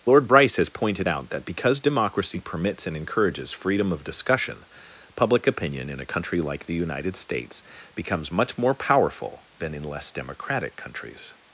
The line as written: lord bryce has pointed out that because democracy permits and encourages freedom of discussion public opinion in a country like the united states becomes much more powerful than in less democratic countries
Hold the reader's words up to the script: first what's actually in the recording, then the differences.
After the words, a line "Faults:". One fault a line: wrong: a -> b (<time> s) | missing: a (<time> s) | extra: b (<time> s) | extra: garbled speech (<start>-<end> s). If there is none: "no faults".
lord bryce has pointed out that because democracy permits and encourages freedom of discussion public opinion in a country like the united states becomes much more powerful than in less democratic countries
Faults:
no faults